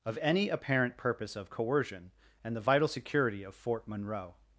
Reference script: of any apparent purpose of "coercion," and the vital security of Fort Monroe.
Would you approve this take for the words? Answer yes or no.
yes